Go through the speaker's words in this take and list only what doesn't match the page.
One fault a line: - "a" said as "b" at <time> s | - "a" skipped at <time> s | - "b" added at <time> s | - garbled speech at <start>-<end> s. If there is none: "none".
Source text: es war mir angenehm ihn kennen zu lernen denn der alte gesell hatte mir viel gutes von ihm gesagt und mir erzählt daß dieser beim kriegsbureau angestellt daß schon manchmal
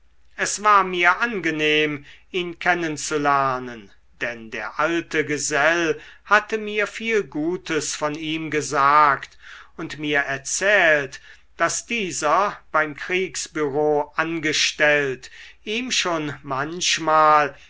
- "daß" said as "ihm" at 15.6 s